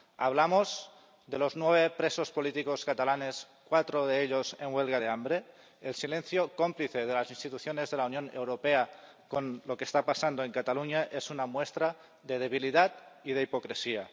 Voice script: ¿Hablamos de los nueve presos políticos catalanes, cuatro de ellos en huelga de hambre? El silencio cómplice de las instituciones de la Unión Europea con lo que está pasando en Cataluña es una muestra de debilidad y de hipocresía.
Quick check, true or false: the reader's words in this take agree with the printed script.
true